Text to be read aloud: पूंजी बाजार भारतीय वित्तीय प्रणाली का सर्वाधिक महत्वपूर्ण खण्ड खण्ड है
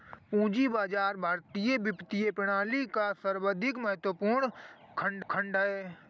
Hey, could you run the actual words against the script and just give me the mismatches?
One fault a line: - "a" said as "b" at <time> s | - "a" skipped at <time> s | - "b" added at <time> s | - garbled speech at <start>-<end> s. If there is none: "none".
none